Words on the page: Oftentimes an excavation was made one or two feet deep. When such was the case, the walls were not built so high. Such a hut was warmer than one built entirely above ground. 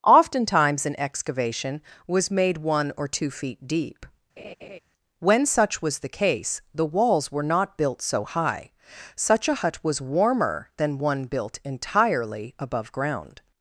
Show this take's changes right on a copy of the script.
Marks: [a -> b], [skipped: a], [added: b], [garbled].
Oftentimes an excavation was made one or two feet deep. When such was the case, the walls were not built so high. Such a hut was warmer than one built entirely above ground.